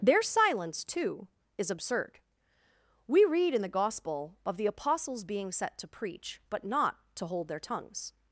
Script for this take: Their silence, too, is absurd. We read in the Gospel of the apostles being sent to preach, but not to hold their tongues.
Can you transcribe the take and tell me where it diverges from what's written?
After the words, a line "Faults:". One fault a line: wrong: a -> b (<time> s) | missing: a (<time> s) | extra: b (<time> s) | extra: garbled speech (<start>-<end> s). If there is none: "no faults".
Their silence, too, is absurd. We read in the Gospel of the apostles being set to preach, but not to hold their tongues.
Faults:
wrong: sent -> set (5.5 s)